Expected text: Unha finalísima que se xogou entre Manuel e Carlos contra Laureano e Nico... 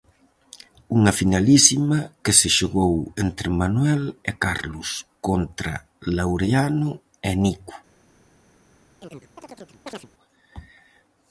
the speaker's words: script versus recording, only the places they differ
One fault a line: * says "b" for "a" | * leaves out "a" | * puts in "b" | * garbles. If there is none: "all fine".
all fine